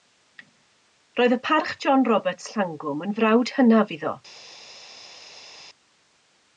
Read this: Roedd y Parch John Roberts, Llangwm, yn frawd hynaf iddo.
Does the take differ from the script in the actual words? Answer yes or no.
no